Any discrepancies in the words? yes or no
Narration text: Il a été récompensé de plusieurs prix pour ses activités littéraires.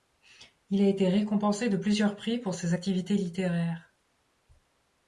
no